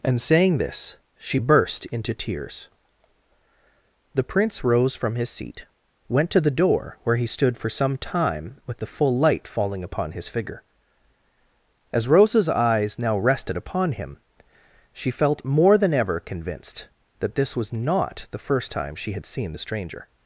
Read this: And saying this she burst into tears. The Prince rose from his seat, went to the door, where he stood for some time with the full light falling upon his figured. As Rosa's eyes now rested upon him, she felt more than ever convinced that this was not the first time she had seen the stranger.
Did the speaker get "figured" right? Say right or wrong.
wrong